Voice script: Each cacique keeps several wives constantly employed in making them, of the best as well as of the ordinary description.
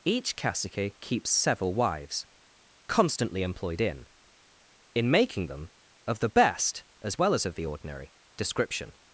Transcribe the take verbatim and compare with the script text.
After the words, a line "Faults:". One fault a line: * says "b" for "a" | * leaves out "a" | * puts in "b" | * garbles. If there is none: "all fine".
Each cacique keeps several wives constantly employed in in making them, of the best as well as of the ordinary description.
Faults:
* puts in "in"